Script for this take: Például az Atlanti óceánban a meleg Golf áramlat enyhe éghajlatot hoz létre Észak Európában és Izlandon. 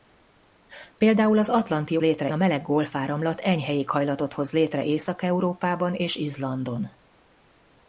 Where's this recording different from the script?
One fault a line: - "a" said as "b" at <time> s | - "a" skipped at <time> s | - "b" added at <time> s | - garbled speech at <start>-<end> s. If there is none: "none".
- "óceánban" said as "létre" at 2.0 s